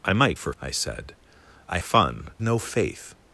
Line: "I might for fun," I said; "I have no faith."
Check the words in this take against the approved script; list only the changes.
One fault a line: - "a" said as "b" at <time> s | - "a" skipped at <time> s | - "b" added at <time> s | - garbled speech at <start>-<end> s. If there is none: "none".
- "fun" skipped at 0.5 s
- "have" said as "fun" at 1.8 s